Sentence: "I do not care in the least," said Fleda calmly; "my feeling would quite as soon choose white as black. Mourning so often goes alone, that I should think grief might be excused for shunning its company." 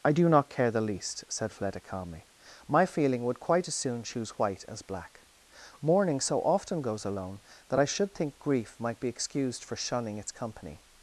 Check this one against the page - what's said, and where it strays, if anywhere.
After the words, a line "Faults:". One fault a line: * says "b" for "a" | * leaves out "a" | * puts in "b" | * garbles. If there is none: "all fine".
"I do not care the least," said Fleda calmly; "my feeling would quite as soon choose white as black. Mourning so often goes alone, that I should think grief might be excused for shunning its company."
Faults:
* leaves out "in"